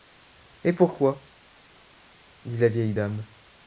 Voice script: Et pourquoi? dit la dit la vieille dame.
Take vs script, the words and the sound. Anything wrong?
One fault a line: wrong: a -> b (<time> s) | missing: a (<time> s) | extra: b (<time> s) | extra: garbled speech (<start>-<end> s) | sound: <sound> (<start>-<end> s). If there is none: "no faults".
missing: dit la (2.7 s)